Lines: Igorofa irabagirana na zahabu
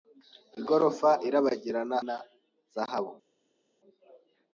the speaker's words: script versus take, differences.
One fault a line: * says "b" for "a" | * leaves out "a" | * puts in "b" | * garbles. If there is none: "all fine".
all fine